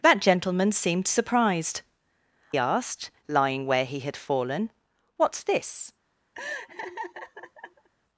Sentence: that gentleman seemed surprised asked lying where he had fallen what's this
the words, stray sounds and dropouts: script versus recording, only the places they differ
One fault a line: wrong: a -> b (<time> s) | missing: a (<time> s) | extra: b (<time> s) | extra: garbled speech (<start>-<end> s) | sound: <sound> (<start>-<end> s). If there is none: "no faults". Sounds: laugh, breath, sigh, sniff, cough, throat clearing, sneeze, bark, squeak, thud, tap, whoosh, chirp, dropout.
sound: laugh (6.3-7.9 s)